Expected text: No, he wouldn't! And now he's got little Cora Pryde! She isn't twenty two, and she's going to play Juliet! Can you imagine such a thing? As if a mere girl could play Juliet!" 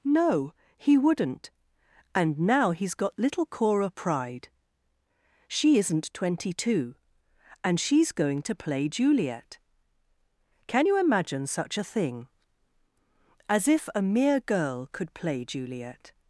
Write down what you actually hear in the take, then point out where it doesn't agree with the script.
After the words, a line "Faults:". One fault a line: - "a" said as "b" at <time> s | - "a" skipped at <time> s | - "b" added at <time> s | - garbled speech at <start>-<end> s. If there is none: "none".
No, he wouldn't! And now he's got little Cora Pryde! She isn't twenty two, and she's going to play Juliet! Can you imagine such a thing? As if a mere girl could play Juliet!"
Faults:
none